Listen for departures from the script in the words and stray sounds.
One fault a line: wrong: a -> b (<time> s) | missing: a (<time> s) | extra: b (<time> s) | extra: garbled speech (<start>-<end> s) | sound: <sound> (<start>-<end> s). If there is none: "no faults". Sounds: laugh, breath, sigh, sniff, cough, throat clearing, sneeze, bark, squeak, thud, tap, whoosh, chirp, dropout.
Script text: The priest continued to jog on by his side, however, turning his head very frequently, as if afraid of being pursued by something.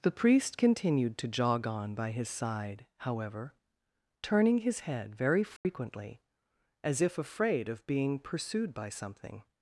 sound: dropout (5.6-5.6 s)